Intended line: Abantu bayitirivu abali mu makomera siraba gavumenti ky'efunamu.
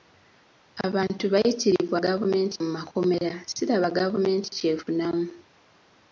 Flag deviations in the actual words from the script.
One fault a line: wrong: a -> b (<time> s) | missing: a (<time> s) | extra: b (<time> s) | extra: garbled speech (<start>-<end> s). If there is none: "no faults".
wrong: abali -> gavumenti (2.1 s)